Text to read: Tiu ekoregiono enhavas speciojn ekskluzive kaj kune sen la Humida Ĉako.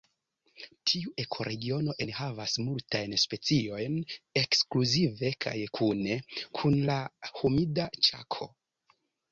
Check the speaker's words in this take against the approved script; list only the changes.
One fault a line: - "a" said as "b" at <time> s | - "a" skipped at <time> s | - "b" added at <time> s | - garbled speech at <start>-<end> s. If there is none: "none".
- "multajn" added at 2.7 s
- "sen" said as "kun" at 6.6 s